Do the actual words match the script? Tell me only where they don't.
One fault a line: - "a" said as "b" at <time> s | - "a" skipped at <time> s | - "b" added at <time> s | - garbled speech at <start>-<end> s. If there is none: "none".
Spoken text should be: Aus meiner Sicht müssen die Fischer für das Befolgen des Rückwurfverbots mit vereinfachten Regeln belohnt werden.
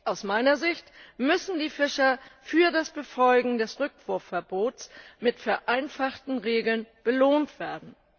none